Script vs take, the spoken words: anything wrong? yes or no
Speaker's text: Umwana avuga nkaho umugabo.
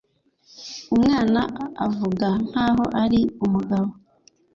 yes